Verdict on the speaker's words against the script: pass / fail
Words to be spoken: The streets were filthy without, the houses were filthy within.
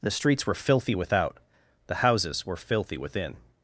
pass